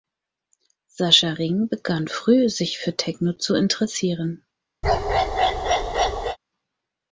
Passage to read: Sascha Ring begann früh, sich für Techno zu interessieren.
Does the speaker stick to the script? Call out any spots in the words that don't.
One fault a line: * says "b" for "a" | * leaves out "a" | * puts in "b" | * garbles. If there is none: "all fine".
all fine